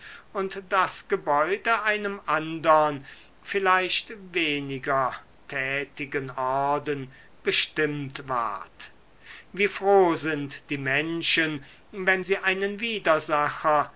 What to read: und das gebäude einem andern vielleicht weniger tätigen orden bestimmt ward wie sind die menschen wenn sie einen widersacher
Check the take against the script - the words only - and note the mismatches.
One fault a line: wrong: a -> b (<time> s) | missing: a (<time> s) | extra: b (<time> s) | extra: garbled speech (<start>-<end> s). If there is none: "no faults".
extra: froh (9.7 s)